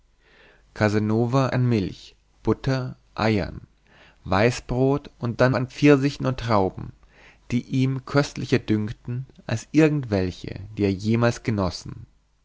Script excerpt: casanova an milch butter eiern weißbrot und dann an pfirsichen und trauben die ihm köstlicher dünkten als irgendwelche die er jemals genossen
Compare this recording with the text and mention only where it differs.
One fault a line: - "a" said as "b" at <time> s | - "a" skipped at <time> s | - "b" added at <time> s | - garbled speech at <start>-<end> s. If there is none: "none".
none